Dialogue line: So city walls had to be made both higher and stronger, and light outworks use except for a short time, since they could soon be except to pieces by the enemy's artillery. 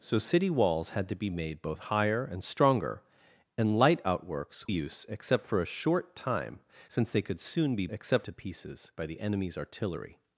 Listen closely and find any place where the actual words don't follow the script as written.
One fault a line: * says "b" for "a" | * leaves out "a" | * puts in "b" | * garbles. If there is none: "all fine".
all fine